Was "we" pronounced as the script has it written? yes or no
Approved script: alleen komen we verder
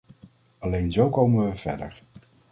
yes